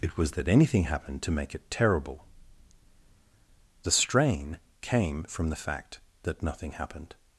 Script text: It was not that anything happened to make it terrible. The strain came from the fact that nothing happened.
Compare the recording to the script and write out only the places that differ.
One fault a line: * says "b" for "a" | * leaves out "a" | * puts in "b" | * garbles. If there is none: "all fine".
* leaves out "not"